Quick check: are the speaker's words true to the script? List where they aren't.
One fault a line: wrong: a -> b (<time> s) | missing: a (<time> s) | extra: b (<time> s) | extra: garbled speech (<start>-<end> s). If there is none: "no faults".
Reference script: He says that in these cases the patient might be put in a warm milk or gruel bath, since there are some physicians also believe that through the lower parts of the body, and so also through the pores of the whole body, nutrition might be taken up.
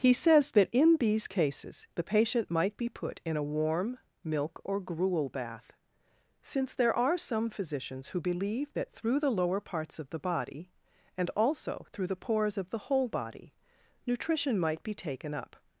wrong: also -> who (8.1 s)
missing: so (11.3 s)